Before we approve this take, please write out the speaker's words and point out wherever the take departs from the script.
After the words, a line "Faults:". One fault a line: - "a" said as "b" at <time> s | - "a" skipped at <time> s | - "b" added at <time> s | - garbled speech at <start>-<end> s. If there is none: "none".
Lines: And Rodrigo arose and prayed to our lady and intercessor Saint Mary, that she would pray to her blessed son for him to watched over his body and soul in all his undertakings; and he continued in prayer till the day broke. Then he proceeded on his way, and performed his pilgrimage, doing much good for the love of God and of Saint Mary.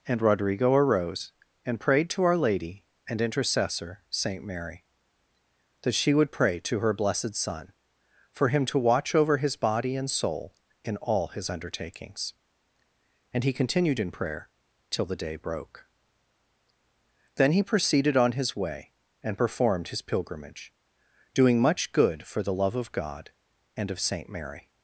And Rodrigo arose and prayed to our lady and intercessor Saint Mary, that she would pray to her blessed son for him to watch over his body and soul in all his undertakings; and he continued in prayer till the day broke. Then he proceeded on his way, and performed his pilgrimage, doing much good for the love of God and of Saint Mary.
Faults:
- "watched" said as "watch" at 8.8 s